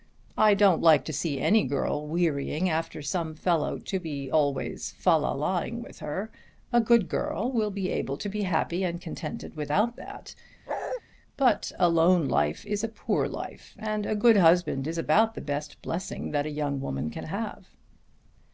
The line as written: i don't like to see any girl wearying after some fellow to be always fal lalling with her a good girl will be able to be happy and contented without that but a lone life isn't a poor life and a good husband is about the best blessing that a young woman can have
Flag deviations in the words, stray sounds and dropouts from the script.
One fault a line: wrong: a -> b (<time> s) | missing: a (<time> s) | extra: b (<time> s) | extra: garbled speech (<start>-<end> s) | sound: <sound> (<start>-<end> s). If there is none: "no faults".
sound: bark (10.7-11.0 s)
wrong: isn't -> is (12.6 s)